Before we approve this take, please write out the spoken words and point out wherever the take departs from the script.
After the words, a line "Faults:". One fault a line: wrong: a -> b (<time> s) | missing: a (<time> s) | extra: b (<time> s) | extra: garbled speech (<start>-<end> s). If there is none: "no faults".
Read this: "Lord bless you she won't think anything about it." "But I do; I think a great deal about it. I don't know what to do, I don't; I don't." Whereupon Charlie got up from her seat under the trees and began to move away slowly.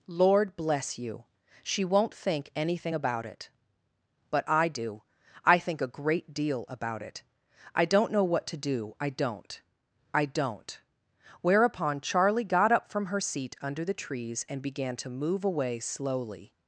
"Lord bless you she won't think anything about it." "But I do; I think a great deal about it. I don't know what to do, I don't; I don't." Whereupon Charlie got up from her seat under the trees and began to move away slowly.
Faults:
no faults